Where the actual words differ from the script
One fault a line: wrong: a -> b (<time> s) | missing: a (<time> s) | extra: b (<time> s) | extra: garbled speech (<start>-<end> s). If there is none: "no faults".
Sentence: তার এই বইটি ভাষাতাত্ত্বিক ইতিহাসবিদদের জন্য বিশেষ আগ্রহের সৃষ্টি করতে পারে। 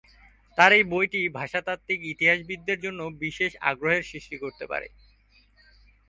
no faults